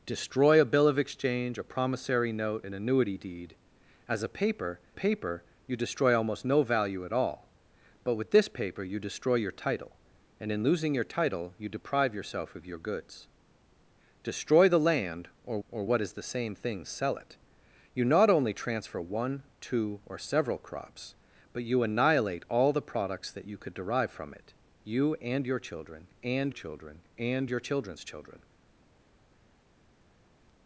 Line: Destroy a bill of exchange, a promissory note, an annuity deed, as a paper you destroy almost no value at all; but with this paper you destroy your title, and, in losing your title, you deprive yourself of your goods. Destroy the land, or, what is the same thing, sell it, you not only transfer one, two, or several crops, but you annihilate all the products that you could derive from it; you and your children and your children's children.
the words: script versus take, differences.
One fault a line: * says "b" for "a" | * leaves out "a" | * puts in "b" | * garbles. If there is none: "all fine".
* puts in "paper"
* puts in "or"
* puts in "children and"